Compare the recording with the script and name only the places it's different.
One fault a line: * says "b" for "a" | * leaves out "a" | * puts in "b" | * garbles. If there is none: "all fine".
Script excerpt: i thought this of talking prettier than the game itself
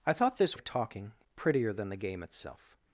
all fine